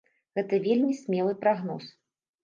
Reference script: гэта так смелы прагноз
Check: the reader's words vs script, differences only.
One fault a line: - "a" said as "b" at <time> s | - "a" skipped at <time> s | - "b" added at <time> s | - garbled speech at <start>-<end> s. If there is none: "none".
- "так" said as "вельмі" at 0.7 s